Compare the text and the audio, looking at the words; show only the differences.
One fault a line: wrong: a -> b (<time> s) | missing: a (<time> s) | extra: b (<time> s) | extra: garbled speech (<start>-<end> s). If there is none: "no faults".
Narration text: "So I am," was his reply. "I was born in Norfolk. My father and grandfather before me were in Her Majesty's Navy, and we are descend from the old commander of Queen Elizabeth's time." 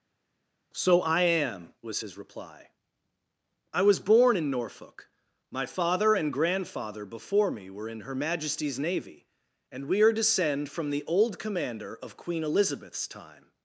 no faults